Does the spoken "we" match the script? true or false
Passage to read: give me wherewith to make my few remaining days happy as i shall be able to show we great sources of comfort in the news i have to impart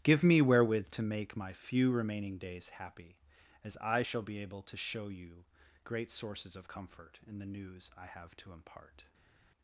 false